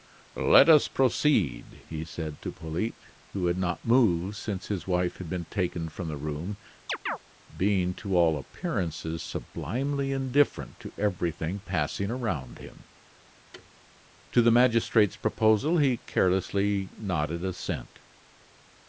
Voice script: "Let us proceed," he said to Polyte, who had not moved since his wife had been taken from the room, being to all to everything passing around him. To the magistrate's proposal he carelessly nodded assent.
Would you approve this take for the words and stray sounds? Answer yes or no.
no